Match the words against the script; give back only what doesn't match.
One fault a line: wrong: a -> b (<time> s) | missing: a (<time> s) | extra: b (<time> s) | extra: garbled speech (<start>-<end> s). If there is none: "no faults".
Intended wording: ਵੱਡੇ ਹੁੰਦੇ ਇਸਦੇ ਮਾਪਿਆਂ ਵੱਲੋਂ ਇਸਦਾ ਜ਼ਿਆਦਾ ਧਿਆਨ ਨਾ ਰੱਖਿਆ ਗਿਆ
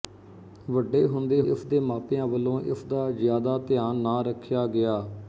no faults